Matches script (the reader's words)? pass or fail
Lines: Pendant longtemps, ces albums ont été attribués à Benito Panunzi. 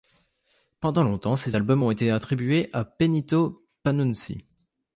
pass